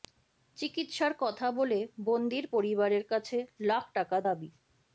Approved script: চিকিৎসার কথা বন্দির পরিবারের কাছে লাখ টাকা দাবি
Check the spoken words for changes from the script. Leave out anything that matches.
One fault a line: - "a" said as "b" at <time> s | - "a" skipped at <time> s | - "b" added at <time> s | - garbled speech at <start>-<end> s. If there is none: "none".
- "বলে" added at 1.5 s